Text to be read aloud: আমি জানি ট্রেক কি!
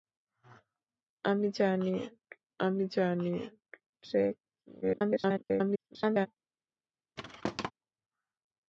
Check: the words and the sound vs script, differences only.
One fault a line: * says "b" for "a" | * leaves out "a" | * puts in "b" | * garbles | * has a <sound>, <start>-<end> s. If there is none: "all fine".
* puts in "আমি জানি"
* garbles
* has a thud, 7.2-7.7 s